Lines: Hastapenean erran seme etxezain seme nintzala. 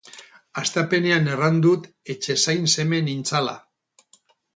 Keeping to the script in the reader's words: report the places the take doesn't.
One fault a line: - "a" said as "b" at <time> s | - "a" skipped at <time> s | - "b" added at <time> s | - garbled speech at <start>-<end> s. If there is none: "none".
- "seme" said as "dut" at 1.6 s